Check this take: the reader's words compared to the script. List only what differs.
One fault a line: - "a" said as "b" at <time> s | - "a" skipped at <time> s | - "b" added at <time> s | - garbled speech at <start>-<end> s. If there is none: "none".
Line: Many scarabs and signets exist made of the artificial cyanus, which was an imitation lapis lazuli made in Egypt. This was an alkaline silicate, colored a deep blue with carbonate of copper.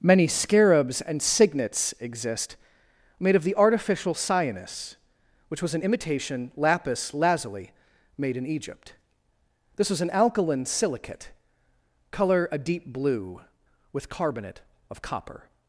- "colored" said as "color" at 12.1 s